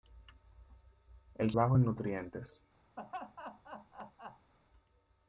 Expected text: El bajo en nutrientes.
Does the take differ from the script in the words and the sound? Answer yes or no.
yes